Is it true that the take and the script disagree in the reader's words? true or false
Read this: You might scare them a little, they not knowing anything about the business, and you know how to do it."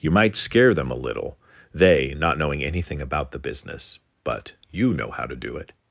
true